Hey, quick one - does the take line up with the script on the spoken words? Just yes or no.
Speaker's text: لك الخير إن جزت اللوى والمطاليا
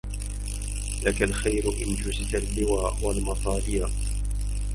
yes